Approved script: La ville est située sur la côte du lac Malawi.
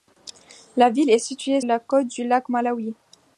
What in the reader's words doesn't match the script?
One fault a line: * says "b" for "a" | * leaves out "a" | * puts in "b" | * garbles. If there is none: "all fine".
* leaves out "sur"